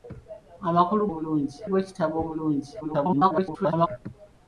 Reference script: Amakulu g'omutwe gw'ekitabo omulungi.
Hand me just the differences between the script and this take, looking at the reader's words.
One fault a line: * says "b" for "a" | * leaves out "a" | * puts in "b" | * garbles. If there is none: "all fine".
* says "omulungi" for "g'omutwe"
* garbles